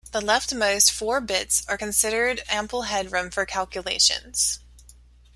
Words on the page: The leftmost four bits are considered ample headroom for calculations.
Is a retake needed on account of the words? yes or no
no